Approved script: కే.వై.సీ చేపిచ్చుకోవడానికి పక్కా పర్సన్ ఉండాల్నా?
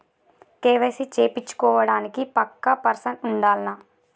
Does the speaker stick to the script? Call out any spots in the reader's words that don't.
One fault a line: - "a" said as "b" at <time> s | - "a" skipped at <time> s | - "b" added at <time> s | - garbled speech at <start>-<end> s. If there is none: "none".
none